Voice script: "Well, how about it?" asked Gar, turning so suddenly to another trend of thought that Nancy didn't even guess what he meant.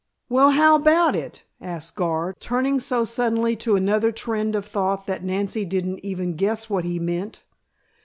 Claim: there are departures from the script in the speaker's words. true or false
false